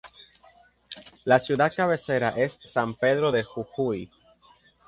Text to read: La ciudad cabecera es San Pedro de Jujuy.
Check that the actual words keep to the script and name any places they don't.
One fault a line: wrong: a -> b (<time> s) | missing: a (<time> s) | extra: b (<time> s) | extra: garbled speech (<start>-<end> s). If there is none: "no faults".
no faults